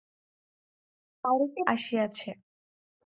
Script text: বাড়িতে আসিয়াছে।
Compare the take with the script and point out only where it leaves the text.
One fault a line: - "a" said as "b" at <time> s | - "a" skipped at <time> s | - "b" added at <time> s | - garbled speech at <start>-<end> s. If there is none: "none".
none